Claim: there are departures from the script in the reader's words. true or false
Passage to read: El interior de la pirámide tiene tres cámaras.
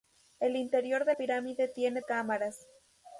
true